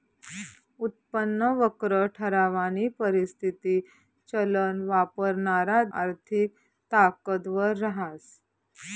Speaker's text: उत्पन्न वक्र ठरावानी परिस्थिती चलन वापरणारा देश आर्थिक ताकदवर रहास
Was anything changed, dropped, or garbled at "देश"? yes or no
yes